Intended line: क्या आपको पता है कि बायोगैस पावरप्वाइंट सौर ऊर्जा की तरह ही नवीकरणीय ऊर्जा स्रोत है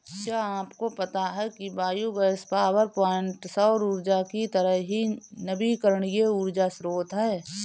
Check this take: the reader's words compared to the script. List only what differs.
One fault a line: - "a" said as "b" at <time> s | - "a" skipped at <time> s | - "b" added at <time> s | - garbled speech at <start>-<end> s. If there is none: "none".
none